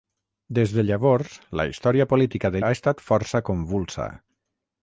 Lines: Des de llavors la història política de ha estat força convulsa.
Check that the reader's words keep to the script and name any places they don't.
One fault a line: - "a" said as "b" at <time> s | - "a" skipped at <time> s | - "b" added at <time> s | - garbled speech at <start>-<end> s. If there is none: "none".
none